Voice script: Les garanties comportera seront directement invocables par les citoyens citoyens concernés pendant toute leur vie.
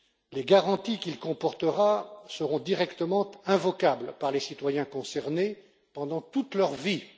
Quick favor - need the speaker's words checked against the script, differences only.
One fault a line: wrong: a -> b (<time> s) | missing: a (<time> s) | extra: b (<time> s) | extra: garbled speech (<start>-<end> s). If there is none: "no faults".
extra: qu'il (1.0 s)
missing: citoyens (4.8 s)